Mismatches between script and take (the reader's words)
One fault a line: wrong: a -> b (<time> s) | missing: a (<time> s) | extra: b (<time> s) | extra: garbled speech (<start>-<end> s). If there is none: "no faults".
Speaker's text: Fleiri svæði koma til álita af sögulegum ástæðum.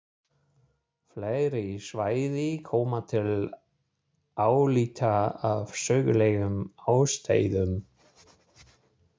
no faults